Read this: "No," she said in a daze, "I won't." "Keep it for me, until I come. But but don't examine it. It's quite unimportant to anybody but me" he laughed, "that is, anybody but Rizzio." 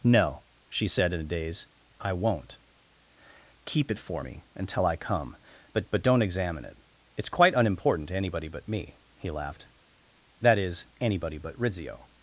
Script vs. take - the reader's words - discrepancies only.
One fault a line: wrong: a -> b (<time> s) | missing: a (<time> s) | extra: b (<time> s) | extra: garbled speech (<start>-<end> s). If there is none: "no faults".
no faults